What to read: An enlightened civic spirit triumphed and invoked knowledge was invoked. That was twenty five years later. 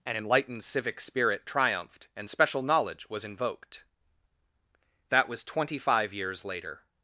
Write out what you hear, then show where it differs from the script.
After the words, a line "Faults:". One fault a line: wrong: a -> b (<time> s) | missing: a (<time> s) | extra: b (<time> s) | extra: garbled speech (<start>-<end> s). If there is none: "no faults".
An enlightened civic spirit triumphed and special knowledge was invoked. That was twenty five years later.
Faults:
wrong: invoked -> special (2.3 s)